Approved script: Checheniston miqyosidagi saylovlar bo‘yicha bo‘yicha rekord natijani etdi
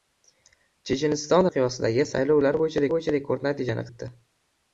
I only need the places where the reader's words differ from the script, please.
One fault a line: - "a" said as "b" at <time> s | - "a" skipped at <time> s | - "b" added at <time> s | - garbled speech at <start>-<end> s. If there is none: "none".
none